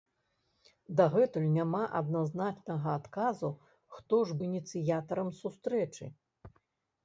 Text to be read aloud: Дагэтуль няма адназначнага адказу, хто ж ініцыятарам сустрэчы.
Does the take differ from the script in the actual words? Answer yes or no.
no